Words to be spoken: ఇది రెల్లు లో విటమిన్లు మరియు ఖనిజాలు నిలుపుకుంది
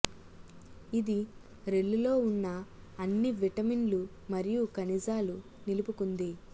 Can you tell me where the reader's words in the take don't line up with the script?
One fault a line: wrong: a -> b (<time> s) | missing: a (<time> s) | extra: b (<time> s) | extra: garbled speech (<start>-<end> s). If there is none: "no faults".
extra: ఉన్న అన్ని (2.2 s)